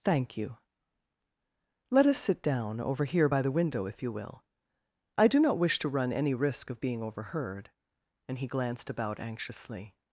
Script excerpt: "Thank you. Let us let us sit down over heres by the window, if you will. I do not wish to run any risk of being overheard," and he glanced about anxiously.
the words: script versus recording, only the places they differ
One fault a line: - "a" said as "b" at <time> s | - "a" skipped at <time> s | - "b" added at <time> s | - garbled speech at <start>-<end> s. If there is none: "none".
- "let us" skipped at 2.2 s
- "heres" said as "here" at 3.0 s